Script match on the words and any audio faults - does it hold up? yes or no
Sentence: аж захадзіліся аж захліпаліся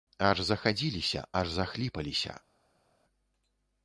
yes